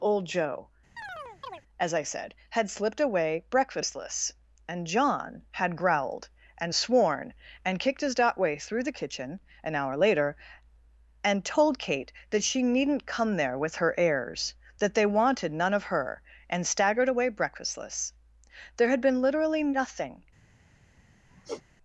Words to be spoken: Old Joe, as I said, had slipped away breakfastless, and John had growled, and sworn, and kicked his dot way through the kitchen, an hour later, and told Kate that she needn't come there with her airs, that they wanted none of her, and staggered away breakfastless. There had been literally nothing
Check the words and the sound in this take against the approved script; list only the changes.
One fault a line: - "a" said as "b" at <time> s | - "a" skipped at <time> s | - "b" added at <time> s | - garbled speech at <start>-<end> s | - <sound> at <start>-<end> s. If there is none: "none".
- chirp at 1.0-1.6 s
- sigh at 21.3-21.6 s